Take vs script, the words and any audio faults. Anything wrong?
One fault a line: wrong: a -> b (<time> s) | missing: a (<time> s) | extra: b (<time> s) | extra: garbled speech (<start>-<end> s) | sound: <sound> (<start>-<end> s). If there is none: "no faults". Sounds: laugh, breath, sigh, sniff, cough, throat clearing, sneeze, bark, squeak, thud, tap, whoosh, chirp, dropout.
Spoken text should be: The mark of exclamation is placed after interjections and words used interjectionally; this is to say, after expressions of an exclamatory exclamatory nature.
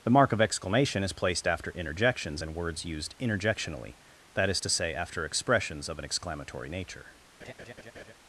wrong: this -> that (4.3 s)
missing: exclamatory (6.7 s)
sound: laugh (7.4-8.1 s)